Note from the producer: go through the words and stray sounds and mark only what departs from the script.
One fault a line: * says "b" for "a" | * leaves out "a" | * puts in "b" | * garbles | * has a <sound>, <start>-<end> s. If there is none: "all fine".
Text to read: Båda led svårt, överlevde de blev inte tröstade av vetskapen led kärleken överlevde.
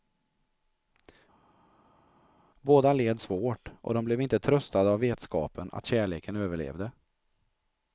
* says "och" for "överlevde"
* says "att" for "led"